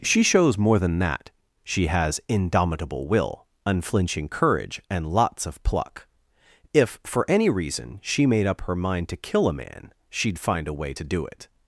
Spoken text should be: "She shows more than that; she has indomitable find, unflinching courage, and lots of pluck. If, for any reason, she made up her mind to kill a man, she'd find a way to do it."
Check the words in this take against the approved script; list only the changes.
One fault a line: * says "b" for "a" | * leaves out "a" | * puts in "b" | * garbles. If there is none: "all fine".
* says "will" for "find"